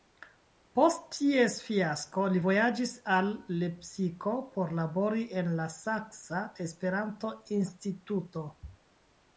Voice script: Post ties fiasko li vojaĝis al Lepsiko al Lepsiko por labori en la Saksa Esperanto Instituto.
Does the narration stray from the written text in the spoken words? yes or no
yes